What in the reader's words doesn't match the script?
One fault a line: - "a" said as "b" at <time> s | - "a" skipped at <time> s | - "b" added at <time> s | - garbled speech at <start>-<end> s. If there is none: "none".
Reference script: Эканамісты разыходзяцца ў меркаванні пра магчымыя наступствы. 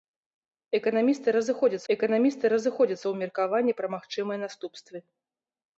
- "эканамісты разыходзяцца" added at 1.9 s